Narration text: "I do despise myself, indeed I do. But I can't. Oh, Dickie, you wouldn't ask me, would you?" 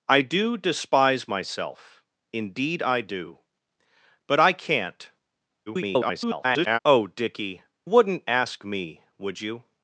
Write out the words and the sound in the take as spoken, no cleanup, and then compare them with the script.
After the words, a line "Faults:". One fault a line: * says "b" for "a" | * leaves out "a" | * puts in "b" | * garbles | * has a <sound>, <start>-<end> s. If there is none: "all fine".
"I do despise myself, indeed I do. But I can't. [garbled] Oh, Dickie, wouldn't ask me, would you?"
Faults:
* garbles
* leaves out "you"